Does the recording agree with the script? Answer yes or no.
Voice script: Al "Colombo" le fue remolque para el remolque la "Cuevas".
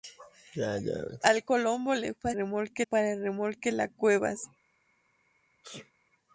yes